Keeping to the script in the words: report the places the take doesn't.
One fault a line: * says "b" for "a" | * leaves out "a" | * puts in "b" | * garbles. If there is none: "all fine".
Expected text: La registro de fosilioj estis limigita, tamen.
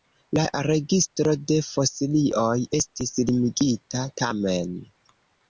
all fine